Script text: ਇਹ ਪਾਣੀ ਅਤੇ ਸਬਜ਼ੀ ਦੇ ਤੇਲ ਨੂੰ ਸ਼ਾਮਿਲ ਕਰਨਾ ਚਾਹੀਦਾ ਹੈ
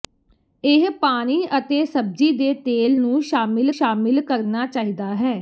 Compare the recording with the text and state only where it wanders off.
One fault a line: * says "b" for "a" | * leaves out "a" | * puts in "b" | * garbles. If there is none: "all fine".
* puts in "ਸ਼ਾਮਿਲ"